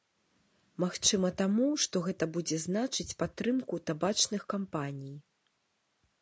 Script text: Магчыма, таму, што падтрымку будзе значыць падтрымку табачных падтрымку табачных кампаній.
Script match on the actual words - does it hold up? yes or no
no